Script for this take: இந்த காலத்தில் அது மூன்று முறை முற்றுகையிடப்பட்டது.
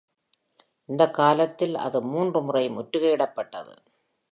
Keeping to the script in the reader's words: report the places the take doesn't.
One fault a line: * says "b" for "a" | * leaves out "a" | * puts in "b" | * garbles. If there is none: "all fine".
all fine